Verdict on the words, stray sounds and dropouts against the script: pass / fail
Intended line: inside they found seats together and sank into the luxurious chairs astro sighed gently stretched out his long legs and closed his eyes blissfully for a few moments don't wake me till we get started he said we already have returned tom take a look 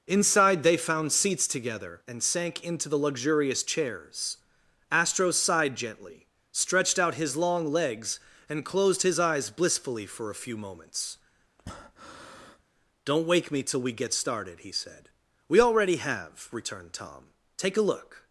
fail